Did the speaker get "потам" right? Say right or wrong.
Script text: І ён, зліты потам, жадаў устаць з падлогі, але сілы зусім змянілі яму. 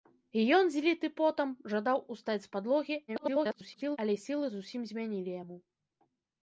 right